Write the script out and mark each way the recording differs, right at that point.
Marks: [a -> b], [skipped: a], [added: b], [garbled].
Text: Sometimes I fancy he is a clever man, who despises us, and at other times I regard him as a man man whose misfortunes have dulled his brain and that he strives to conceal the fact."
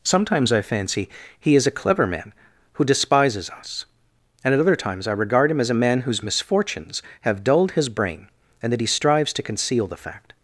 Sometimes I fancy he is a clever man, who despises us, and at other times I regard him as a man [skipped: man] whose misfortunes have dulled his brain and that he strives to conceal the fact."